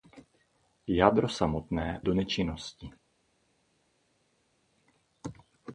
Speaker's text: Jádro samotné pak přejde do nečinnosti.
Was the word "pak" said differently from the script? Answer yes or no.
yes